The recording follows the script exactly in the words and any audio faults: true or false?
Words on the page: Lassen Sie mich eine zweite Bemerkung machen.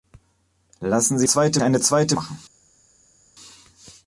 false